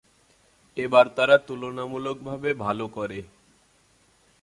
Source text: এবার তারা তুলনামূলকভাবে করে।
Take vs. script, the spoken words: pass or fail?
fail